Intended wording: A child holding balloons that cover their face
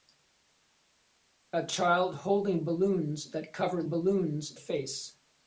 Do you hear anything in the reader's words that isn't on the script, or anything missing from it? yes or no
yes